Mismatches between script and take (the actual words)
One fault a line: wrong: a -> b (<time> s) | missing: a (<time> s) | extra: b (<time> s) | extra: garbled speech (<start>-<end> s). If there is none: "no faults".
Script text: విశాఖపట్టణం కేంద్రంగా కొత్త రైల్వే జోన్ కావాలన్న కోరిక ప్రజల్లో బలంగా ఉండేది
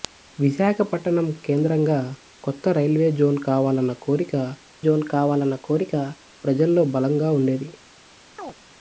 extra: జోన్ కావాలన్న కోరిక (4.9 s)